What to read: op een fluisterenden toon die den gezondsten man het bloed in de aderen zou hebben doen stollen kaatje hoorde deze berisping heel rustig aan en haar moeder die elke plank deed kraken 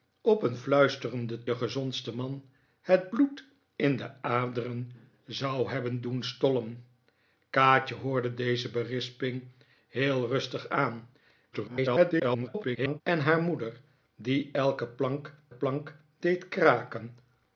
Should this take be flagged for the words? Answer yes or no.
yes